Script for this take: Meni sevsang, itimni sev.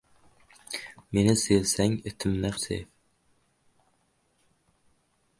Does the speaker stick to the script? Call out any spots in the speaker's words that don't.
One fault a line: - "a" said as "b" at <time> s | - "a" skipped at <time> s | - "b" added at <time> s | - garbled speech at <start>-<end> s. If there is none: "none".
none